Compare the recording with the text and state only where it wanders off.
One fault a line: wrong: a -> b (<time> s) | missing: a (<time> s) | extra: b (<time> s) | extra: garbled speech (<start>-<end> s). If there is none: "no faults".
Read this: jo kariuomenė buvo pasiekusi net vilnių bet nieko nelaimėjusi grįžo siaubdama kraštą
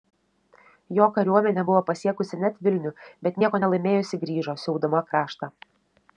no faults